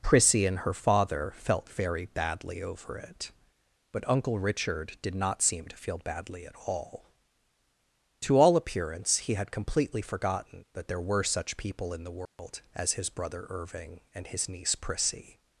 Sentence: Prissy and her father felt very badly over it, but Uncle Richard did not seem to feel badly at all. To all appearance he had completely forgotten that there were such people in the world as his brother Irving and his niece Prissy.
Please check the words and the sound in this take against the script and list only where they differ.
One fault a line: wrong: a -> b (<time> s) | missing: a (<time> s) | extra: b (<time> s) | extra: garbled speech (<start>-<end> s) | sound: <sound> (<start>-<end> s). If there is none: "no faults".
sound: dropout (12.3-12.4 s)